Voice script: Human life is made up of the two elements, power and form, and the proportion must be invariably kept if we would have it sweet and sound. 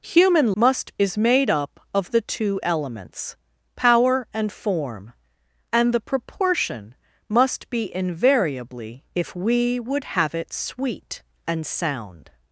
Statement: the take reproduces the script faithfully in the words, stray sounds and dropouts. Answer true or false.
false